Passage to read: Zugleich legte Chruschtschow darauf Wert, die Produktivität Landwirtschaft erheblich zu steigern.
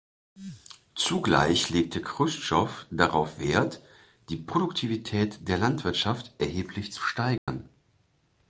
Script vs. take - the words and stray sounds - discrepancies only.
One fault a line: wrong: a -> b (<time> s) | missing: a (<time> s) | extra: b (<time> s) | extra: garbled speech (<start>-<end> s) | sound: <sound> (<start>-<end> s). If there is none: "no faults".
extra: der (5.5 s)
sound: dropout (7.4-7.5 s)